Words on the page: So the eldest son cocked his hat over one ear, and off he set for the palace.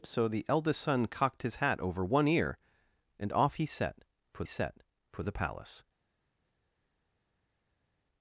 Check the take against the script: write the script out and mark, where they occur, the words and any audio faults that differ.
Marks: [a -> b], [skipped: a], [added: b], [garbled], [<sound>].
So the eldest son cocked his hat over one ear, and off he set for [added: set for] the palace.